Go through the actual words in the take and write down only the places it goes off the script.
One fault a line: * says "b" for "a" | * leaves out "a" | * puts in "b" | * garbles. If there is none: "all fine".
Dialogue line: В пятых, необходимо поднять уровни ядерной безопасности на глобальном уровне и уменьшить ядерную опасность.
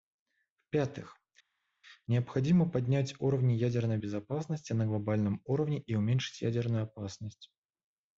all fine